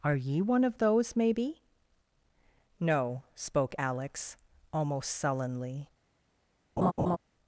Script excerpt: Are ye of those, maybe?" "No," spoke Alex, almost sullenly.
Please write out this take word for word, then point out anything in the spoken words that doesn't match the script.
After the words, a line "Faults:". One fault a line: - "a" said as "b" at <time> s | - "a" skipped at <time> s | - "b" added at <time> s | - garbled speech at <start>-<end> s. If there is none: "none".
Are ye one of those, maybe?" "No," spoke Alex, almost sullenly.
Faults:
- "one" added at 0.4 s